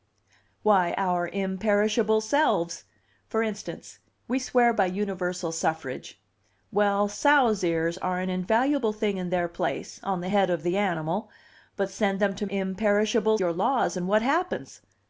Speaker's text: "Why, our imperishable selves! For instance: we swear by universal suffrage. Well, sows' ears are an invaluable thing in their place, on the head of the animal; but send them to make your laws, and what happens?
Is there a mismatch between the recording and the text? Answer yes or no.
yes